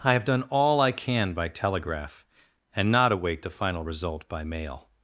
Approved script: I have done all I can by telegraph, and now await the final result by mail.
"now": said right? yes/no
no